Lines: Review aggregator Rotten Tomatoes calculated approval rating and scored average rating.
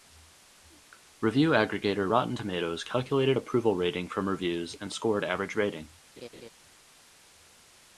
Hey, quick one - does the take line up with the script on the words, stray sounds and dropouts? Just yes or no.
no